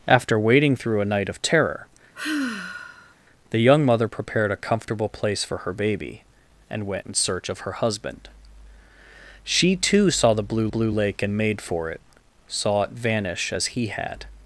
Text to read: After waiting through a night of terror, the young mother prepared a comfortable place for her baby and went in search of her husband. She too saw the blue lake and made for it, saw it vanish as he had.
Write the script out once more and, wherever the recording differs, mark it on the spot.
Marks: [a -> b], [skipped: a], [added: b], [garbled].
After waiting through a night of terror, the young mother prepared a comfortable place for her baby and went in search of her husband. She too saw the blue [added: blue] lake and made for it, saw it vanish as he had.